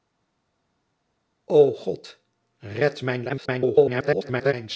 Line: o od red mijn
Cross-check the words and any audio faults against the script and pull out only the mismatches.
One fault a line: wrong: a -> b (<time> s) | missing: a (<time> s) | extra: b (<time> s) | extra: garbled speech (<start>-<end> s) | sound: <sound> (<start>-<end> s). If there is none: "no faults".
extra: garbled speech (3.3-4.5 s)